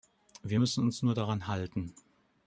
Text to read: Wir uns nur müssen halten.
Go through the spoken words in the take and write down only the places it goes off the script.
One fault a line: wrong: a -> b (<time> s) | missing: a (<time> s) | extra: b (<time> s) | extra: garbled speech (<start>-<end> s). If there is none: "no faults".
extra: müssen (0.6 s)
wrong: müssen -> daran (1.2 s)